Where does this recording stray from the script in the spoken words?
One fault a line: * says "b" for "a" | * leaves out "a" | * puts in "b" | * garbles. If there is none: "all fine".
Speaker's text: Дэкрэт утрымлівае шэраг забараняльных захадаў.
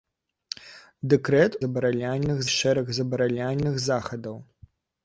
* says "забараняльных" for "утрымлівае"